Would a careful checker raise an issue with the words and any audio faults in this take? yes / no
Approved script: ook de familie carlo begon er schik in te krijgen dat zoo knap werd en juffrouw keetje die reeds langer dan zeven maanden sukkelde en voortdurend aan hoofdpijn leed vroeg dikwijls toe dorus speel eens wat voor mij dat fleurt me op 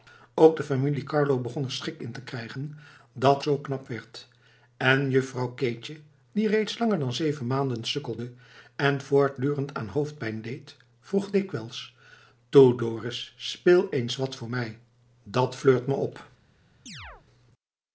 yes